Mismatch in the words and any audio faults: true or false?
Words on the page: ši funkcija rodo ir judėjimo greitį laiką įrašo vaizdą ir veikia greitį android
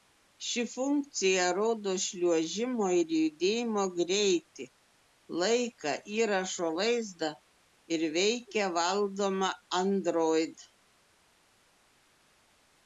true